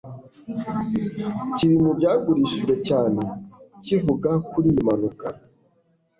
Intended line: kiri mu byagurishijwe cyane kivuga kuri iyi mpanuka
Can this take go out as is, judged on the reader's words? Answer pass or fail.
pass